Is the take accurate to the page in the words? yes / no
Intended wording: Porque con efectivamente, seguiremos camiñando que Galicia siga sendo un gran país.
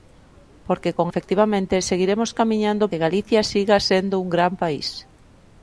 yes